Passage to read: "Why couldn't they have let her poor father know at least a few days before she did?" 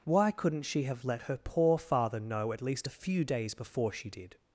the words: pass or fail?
fail